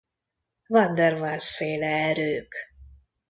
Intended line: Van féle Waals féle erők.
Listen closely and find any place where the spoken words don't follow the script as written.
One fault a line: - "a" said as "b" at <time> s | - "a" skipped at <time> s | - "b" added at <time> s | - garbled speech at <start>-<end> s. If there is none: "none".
- "féle" said as "der" at 0.9 s